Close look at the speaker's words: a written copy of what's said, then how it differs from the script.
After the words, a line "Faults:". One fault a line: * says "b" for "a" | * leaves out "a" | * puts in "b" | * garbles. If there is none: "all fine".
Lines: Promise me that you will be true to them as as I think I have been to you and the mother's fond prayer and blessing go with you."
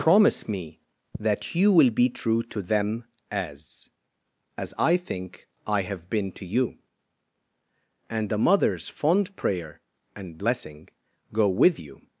Promise me that you will be true to them as as I think I have been to you and the mother's fond prayer and blessing go with you."
Faults:
all fine